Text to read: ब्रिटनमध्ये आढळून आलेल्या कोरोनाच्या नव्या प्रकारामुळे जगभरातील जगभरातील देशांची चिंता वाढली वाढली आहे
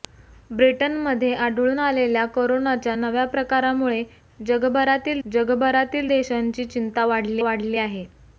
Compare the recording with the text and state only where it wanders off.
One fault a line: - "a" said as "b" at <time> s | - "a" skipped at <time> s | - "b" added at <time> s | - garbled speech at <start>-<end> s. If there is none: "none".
none